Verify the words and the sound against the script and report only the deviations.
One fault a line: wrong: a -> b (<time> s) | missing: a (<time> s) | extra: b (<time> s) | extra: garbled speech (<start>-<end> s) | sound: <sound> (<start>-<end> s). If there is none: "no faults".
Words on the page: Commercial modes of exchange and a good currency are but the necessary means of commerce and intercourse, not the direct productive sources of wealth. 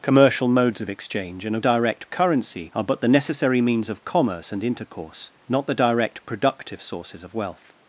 wrong: good -> direct (1.6 s)